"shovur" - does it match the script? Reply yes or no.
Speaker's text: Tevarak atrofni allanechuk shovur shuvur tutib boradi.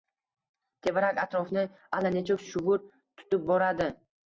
no